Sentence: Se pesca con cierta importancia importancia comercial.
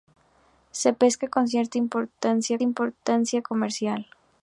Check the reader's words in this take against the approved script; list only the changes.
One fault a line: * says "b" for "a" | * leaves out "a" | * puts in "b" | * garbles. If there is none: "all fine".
all fine